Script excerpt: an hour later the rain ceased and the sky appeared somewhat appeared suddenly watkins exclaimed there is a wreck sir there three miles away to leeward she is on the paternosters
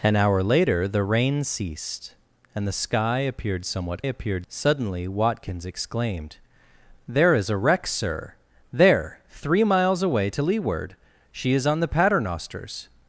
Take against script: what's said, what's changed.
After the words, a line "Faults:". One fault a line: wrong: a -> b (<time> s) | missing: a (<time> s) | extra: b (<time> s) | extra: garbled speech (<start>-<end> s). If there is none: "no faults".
an hour later the rain ceased and the sky appeared somewhat appeared suddenly watkins exclaimed there is a wreck sir there three miles away to leeward she is on the paternosters
Faults:
no faults